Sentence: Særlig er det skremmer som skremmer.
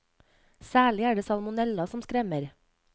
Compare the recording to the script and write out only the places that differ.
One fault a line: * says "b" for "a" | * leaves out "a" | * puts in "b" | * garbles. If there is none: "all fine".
* says "salmonella" for "skremmer"